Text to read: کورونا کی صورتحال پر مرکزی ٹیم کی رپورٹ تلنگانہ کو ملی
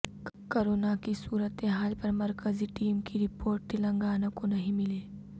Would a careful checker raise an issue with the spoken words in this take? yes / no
yes